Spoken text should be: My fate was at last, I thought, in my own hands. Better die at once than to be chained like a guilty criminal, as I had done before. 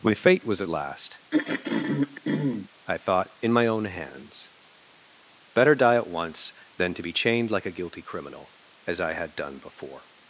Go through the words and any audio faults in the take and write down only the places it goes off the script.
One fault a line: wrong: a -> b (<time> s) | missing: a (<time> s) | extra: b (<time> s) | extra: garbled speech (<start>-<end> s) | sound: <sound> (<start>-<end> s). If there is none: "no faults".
sound: throat clearing (1.3-2.7 s)